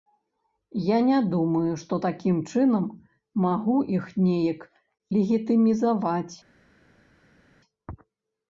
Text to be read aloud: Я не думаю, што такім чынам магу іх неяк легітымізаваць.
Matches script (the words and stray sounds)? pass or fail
pass